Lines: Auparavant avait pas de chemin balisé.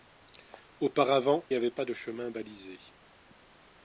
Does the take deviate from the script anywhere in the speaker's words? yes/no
no